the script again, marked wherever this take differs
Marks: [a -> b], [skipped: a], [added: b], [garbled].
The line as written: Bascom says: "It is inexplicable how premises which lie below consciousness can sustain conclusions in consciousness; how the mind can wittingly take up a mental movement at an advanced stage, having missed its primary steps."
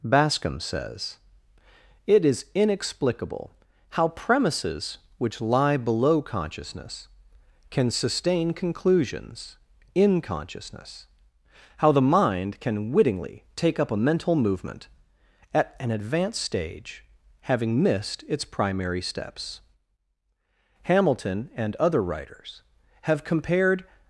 Bascom says: "It is inexplicable how premises which lie below consciousness can sustain conclusions in consciousness; how the mind can wittingly take up a mental movement at an advanced stage, having missed its primary steps." [added: Hamilton and other writers have compared]